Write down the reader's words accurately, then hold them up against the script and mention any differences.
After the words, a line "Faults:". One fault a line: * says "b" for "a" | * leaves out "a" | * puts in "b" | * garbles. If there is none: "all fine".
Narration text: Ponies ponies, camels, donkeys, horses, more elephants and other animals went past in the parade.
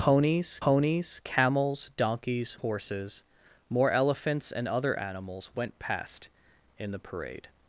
Ponies ponies, camels, donkeys, horses, more elephants and other animals went past in the parade.
Faults:
all fine